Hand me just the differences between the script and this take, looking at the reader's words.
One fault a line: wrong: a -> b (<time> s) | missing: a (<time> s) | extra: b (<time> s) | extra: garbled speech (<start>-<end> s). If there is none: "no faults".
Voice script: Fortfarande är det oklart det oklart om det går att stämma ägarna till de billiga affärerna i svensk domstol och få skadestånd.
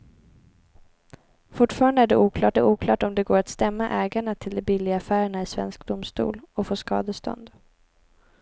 no faults